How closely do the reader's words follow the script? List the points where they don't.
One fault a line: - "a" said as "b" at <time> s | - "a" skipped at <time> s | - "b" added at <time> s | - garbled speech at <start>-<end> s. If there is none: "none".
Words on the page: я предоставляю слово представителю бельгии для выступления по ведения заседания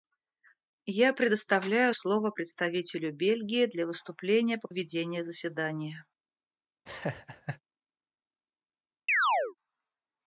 none